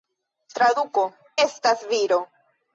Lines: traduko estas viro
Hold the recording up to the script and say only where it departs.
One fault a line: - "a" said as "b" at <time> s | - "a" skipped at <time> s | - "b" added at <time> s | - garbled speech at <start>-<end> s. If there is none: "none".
none